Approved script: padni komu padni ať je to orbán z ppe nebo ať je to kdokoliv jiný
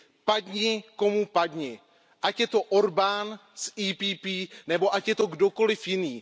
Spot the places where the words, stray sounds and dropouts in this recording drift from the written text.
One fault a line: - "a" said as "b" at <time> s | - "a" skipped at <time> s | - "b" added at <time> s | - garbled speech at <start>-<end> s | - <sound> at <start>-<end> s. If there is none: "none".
none